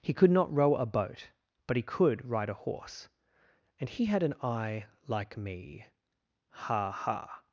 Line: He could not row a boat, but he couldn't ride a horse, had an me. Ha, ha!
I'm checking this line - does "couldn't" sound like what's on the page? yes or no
no